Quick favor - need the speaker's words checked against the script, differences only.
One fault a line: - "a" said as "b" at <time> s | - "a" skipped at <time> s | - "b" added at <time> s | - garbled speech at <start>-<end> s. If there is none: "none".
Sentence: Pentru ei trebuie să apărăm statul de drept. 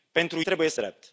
- "ei" skipped at 0.4 s
- "apărăm statul de" skipped at 0.8 s